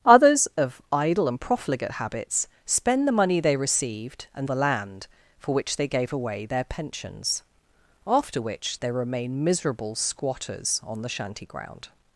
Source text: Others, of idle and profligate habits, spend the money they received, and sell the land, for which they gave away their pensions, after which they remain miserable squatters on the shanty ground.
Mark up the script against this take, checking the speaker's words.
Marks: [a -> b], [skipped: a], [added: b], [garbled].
Others, of idle and profligate habits, spend the money they received, and [skipped: sell] the land, for which they gave away their pensions, after which they remain miserable squatters on the shanty ground.